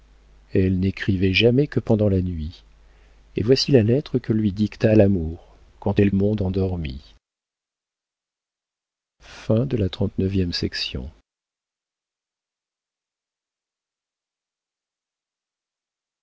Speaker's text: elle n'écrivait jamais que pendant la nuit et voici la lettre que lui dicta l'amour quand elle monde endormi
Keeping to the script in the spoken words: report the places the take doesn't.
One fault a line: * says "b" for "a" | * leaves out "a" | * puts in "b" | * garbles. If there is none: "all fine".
all fine